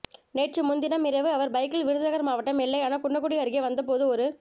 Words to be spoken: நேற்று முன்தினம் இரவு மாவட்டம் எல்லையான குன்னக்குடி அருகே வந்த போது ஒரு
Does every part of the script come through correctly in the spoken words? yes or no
no